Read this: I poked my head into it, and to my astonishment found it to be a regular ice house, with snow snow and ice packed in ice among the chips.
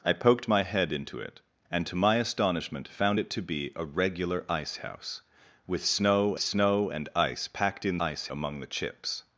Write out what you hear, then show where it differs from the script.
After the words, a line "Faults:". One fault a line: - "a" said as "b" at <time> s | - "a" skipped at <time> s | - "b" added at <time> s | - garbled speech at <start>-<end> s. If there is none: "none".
I poked my head into it, and to my astonishment found it to be a regular ice house, with snow snow and ice packed in ice among the chips.
Faults:
none